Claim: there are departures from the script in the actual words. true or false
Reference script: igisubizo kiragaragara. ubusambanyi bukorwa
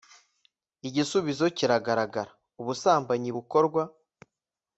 false